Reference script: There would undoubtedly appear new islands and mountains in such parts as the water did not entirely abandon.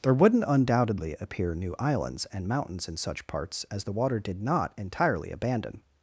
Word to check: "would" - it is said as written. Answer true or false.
false